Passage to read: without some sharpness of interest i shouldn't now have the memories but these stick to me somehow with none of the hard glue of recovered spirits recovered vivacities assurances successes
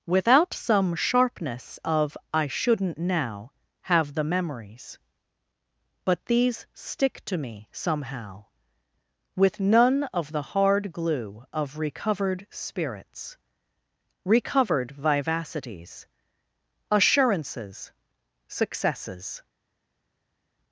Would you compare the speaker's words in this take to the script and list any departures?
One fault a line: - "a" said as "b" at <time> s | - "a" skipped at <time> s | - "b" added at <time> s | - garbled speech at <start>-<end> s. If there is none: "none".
- "interest" skipped at 2.2 s